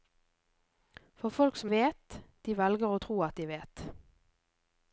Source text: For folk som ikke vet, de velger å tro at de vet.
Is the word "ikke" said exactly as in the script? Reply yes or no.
no